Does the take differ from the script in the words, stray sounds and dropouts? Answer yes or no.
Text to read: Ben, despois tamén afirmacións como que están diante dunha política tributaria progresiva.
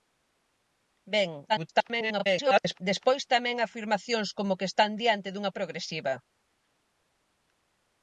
yes